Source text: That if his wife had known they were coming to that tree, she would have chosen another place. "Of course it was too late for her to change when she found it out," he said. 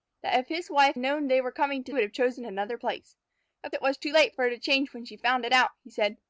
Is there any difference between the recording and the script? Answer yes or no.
yes